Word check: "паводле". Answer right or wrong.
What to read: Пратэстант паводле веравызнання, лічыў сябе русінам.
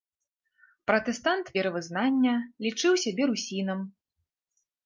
wrong